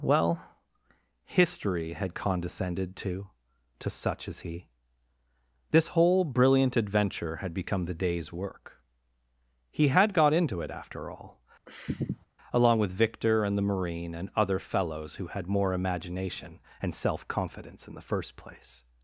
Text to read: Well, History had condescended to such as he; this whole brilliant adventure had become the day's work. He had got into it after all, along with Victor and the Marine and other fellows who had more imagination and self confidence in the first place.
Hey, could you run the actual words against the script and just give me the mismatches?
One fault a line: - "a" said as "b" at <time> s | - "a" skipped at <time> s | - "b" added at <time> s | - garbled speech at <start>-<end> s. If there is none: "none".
- "to" added at 3.8 s